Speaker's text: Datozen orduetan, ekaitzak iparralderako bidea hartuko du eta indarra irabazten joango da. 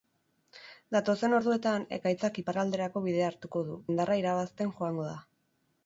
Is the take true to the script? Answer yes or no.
no